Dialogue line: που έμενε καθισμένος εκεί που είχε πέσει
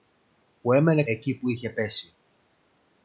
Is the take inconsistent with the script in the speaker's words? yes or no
yes